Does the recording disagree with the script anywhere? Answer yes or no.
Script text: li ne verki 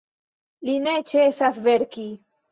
yes